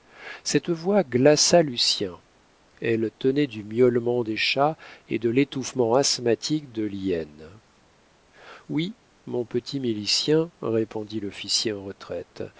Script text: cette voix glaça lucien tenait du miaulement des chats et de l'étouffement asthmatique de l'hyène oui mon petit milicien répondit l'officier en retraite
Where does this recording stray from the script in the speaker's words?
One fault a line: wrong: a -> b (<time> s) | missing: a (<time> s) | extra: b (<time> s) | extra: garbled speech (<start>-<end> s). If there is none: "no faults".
extra: elle (2.8 s)